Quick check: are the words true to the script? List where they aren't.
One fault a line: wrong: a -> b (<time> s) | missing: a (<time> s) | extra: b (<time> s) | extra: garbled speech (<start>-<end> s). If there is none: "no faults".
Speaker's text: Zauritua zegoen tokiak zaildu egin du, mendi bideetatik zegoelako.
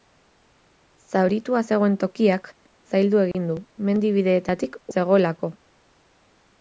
no faults